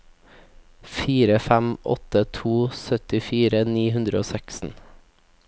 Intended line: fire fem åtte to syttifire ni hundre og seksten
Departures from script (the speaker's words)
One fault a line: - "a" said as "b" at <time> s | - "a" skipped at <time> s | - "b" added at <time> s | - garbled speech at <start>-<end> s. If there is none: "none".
none